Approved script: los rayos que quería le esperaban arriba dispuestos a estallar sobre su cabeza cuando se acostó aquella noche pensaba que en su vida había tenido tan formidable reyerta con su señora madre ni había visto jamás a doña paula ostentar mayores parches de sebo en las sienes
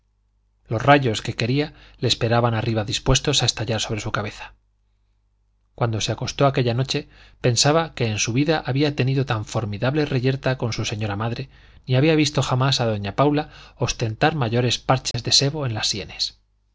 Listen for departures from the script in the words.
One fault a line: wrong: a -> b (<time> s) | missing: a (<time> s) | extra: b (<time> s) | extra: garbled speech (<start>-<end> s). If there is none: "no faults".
no faults